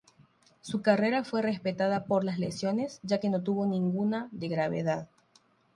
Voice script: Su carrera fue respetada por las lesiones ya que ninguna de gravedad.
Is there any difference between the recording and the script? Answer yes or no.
yes